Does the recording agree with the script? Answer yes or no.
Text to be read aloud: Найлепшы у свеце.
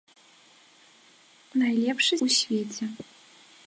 yes